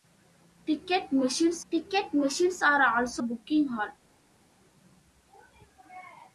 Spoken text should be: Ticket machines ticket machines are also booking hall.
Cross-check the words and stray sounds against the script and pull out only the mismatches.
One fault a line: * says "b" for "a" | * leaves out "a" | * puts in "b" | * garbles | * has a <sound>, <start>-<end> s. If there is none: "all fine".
all fine